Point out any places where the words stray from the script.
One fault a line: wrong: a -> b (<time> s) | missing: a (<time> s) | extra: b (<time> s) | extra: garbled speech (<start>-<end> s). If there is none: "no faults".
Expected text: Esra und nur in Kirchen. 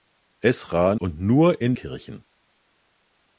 no faults